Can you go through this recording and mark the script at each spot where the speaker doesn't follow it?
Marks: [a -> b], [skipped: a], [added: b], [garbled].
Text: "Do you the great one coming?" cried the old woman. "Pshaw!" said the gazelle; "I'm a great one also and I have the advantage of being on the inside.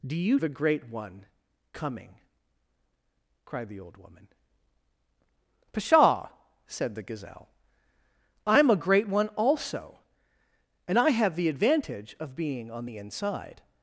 "Do you the great one coming?" cried the old woman. "Pshaw!" said the gazelle; "I'm a great one also and I have the advantage of being on the inside.